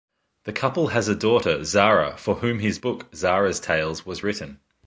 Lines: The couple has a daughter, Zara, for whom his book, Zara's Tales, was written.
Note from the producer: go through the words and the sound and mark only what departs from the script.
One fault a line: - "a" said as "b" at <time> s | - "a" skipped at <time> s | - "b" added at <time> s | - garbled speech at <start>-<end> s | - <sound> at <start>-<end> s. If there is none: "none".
none